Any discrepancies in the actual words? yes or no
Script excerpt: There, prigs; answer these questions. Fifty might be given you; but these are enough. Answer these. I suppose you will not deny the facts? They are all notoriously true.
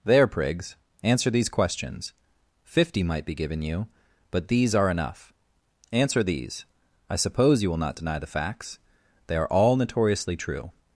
no